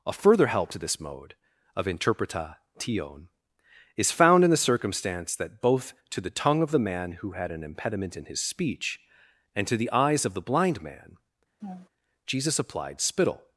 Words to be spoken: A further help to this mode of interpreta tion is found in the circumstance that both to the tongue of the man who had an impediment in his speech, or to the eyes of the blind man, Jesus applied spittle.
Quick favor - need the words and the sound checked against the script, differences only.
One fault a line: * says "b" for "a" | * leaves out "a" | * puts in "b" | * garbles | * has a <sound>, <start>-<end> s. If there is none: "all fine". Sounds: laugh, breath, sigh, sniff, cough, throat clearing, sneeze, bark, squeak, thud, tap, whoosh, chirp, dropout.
* says "and" for "or"
* has a laugh, 11.6-11.9 s